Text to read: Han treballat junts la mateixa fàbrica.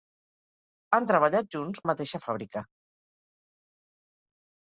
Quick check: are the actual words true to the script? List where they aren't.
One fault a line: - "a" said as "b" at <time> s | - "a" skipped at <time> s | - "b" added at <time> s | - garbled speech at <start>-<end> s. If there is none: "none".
none